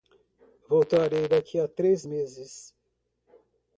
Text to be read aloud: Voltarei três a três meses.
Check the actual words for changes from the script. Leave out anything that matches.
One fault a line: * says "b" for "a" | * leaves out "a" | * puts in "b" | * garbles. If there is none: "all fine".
* says "daqui" for "três"